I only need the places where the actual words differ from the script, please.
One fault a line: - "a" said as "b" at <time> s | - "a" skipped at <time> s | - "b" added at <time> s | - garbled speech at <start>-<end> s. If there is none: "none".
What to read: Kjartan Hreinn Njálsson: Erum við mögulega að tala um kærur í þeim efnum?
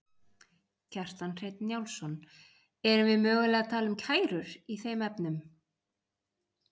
none